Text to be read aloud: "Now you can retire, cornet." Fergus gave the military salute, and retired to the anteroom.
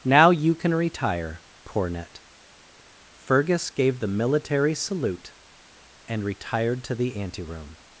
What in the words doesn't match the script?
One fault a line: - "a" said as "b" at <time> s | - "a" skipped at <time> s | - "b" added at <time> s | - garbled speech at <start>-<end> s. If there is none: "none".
none